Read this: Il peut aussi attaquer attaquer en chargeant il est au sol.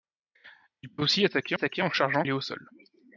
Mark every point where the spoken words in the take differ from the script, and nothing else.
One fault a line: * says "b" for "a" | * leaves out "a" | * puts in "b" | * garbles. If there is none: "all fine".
all fine